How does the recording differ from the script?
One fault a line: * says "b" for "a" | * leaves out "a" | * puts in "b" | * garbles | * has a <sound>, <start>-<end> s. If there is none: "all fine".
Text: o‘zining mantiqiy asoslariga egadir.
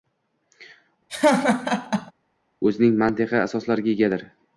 * has a laugh, 1.1-2.1 s